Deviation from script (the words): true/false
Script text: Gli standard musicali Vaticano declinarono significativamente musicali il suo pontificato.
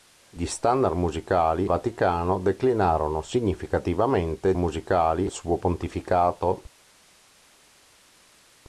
false